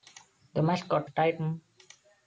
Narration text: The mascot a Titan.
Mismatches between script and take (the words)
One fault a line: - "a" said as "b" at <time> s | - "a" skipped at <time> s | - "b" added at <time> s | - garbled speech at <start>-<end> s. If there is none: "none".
none